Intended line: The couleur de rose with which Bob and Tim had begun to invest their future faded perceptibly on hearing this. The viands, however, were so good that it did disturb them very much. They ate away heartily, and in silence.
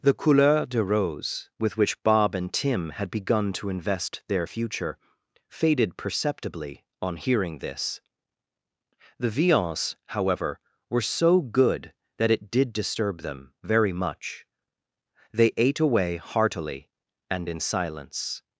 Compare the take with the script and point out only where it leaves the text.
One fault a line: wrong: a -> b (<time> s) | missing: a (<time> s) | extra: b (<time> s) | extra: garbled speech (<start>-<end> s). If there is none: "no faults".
no faults